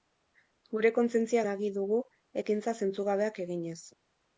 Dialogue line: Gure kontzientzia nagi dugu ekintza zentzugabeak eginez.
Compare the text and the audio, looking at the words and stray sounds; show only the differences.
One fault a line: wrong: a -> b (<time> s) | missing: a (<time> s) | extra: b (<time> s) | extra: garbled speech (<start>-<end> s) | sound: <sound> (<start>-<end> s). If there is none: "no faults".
no faults